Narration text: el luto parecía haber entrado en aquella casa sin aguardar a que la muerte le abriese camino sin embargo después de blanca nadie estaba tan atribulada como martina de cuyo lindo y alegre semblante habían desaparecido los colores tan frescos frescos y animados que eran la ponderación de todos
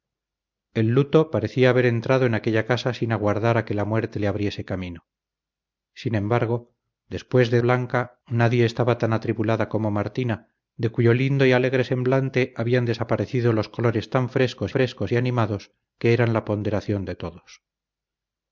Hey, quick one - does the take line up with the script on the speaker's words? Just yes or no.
yes